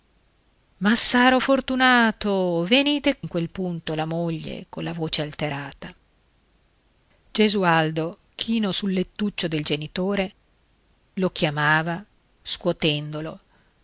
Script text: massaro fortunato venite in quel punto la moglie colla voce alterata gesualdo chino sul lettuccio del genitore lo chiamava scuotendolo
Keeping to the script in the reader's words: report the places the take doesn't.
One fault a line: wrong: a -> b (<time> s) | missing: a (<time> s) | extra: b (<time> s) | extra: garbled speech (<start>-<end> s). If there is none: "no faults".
no faults